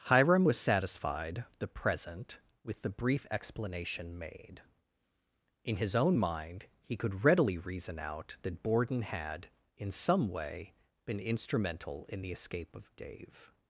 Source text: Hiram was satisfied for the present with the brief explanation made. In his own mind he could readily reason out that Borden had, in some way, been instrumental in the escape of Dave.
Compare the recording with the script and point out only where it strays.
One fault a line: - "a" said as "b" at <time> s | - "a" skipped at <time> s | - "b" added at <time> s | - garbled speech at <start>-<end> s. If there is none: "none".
- "for" skipped at 1.4 s